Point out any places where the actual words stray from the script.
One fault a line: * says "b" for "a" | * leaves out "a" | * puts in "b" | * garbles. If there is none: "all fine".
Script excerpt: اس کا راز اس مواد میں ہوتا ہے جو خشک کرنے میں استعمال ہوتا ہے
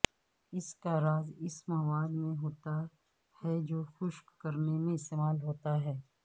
all fine